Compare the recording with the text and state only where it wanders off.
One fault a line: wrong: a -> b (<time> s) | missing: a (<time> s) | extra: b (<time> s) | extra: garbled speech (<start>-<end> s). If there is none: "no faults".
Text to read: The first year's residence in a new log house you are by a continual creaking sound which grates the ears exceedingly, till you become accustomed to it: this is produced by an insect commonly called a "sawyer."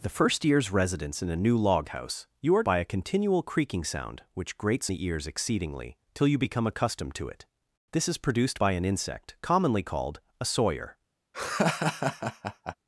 no faults